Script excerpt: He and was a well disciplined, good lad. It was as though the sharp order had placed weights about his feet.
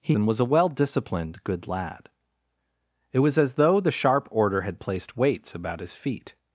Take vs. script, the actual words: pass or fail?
pass